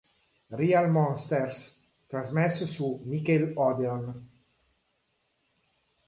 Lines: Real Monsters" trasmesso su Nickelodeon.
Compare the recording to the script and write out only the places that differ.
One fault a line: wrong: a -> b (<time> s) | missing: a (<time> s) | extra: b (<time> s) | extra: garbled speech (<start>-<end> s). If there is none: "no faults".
no faults